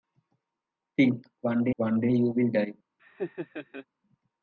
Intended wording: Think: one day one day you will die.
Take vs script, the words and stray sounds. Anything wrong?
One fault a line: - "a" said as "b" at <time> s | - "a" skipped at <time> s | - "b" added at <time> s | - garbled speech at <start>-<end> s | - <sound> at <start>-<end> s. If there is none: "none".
- laugh at 3.0-3.9 s